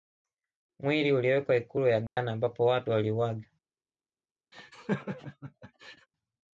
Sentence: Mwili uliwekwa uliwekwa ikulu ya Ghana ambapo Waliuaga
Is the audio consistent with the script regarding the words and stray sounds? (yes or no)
no